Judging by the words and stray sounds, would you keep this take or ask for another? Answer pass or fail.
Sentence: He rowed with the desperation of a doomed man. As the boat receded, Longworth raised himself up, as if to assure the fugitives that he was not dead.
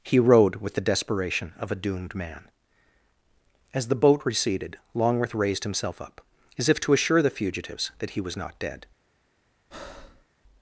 fail